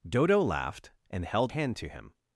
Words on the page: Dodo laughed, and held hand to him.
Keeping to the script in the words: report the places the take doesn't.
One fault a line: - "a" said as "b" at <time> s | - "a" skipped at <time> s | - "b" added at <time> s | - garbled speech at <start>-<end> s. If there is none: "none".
none